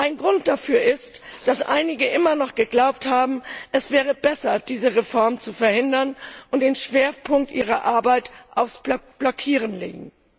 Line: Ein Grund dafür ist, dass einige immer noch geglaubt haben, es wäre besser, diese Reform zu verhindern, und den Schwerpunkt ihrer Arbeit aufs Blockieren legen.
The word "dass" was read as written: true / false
true